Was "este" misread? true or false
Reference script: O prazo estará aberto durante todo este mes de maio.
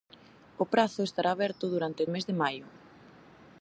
true